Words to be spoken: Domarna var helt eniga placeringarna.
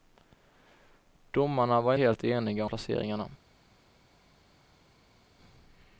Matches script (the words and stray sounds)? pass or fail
pass